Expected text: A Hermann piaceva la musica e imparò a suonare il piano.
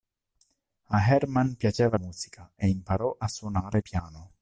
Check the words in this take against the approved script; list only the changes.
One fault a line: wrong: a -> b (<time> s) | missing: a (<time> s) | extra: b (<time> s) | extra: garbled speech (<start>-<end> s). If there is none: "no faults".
missing: la (1.9 s)
missing: il (3.8 s)